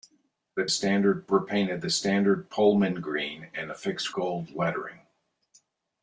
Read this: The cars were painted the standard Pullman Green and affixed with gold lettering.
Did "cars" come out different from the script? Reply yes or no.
yes